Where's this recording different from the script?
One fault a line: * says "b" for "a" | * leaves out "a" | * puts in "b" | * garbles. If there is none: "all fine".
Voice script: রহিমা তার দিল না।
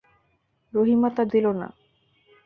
all fine